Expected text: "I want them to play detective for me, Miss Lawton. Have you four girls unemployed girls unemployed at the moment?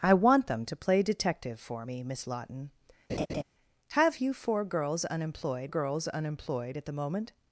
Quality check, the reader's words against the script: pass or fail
pass